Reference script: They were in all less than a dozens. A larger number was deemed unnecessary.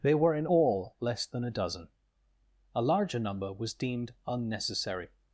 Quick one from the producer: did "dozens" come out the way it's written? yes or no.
no